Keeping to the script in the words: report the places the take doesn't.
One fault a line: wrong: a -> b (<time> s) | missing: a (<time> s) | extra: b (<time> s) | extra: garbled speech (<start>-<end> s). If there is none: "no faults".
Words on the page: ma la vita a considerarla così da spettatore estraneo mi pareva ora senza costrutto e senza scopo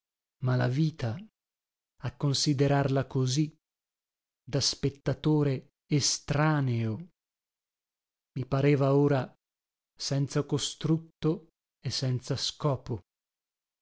no faults